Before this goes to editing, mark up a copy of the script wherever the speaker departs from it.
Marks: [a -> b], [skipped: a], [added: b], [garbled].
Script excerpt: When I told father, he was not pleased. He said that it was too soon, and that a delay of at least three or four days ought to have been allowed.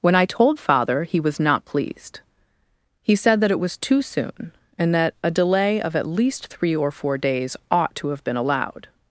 When I told father, he was not pleased. He said that it was too soon, and that a delay of at least three or four days ought to have been allowed.